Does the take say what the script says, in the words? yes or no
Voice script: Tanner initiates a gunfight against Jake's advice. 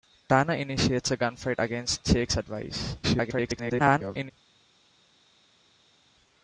no